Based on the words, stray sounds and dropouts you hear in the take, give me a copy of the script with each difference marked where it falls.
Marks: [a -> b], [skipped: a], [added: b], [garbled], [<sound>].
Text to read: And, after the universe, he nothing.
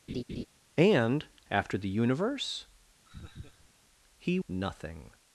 [laugh] And, after the universe, [laugh] he nothing.